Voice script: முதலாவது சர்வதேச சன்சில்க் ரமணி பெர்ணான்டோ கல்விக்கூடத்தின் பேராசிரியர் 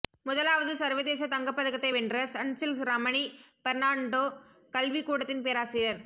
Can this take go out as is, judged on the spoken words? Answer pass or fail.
fail